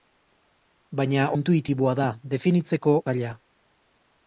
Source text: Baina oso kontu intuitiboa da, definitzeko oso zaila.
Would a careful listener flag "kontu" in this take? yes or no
yes